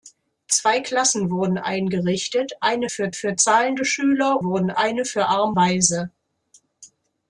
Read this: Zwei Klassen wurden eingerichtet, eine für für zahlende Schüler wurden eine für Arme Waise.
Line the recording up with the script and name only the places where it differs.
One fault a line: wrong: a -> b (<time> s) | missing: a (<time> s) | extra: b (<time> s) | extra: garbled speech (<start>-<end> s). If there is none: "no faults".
no faults